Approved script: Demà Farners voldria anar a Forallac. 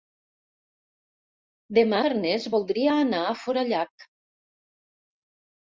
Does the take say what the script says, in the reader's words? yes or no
yes